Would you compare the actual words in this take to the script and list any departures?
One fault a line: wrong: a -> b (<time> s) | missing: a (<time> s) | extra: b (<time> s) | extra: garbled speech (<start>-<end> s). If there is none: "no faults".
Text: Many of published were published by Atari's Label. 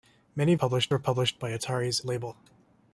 no faults